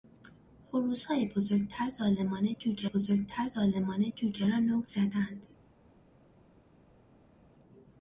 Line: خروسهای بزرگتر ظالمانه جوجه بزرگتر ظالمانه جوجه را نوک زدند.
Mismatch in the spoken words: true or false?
false